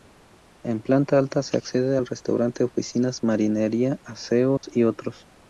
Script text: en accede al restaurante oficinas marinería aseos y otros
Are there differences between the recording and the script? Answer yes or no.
yes